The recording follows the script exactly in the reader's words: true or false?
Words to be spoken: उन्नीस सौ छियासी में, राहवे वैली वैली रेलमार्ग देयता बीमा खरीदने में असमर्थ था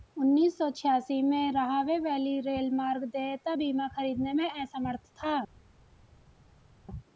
false